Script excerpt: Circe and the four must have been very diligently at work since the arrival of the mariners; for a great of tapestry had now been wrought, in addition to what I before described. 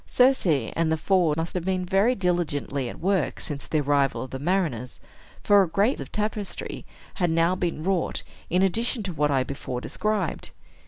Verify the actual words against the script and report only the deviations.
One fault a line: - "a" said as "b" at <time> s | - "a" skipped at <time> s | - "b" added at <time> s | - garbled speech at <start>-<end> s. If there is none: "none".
none